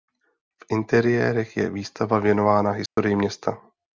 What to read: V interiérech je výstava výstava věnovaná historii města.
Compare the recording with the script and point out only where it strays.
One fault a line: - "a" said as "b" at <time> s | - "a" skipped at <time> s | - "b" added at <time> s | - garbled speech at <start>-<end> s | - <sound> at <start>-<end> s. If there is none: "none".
- "výstava" skipped at 2.2 s
- dropout at 2.9-3.0 s